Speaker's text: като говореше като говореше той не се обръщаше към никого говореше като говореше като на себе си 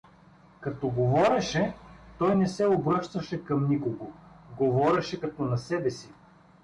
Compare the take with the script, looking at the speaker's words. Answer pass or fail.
fail